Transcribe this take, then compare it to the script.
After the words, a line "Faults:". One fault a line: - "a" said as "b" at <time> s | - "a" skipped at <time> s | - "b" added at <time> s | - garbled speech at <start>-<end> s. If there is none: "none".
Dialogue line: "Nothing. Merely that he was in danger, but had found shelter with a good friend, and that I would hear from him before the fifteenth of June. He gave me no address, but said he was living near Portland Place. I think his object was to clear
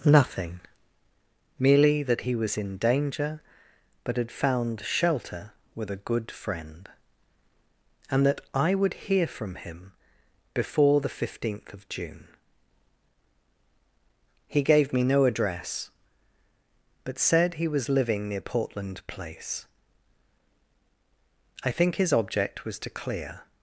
"Nothing. Merely that he was in danger, but had found shelter with a good friend, and that I would hear from him before the fifteenth of June. He gave me no address, but said he was living near Portland Place. I think his object was to clear
Faults:
none